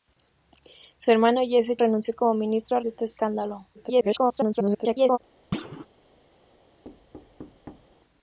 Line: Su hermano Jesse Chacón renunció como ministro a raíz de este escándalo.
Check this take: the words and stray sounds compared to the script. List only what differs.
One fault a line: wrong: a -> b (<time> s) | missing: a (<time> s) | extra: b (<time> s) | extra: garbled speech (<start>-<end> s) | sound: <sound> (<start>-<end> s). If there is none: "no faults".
missing: Chacón (1.8 s)
missing: raíz (2.8 s)
extra: garbled speech (3.7-5.2 s)
sound: thud (5.5-5.9 s)
sound: thud (6.8-7.9 s)